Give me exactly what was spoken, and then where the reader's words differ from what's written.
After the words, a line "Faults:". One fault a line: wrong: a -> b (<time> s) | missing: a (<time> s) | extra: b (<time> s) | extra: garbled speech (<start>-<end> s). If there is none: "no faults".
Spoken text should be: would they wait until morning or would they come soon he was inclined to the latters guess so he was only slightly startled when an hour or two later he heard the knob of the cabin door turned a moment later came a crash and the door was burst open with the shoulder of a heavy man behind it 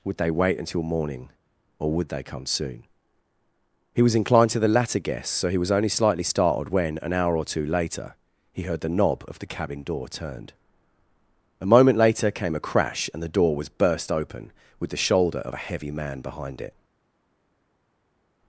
would they wait until morning or would they come soon he was inclined to the latter guess so he was only slightly startled when an hour or two later he heard the knob of the cabin door turned a moment later came a crash and the door was burst open with the shoulder of a heavy man behind it
Faults:
wrong: latters -> latter (4.7 s)